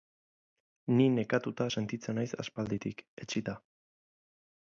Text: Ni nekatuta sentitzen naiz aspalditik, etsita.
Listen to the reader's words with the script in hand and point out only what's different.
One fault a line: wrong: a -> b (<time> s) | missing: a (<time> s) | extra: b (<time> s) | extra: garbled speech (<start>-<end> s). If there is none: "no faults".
no faults